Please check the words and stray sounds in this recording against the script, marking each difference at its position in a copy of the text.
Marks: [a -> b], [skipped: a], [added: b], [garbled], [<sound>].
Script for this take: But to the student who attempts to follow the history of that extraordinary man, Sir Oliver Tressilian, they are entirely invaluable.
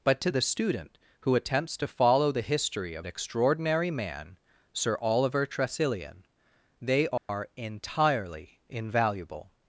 But to the student who attempts to follow the history of [skipped: that] extraordinary man, Sir Oliver Tressilian, they are [dropout] entirely invaluable.